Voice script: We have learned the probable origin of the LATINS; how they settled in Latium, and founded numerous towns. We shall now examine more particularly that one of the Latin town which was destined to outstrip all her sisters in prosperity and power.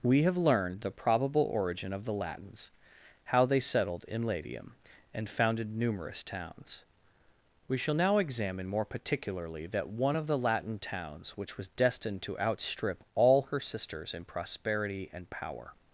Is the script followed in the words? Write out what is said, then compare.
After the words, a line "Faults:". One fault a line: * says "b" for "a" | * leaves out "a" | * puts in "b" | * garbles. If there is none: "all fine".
We have learned the probable origin of the LATINS; how they settled in Latium, and founded numerous towns. We shall now examine more particularly that one of the Latin towns which was destined to outstrip all her sisters in prosperity and power.
Faults:
* says "towns" for "town"